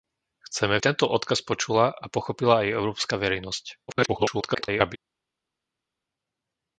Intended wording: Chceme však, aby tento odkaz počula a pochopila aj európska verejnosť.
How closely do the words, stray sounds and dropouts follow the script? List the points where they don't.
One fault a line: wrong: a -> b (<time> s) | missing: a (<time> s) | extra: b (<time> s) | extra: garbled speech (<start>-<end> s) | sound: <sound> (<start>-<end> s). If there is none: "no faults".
missing: však aby (0.8 s)
extra: garbled speech (3.9-5.0 s)